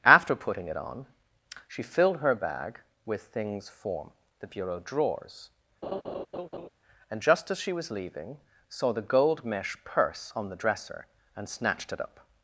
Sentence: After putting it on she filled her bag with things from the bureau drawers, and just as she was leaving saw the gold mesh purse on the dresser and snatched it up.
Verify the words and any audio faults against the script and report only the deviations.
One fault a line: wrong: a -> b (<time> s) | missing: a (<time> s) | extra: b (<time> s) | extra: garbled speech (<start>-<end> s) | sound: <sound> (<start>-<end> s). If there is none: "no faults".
wrong: from -> form (3.7 s)
sound: laugh (5.8-6.7 s)